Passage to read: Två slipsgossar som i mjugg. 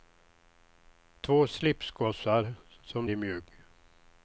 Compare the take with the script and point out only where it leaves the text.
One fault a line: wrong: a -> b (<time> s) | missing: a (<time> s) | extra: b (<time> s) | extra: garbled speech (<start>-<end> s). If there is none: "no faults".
no faults